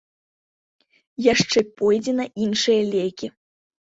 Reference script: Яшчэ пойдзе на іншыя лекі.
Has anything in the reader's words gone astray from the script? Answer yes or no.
no